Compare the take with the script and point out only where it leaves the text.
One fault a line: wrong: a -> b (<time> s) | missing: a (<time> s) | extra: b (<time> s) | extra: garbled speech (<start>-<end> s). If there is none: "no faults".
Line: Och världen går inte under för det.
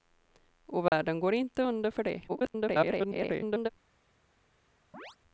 extra: garbled speech (2.3-3.7 s)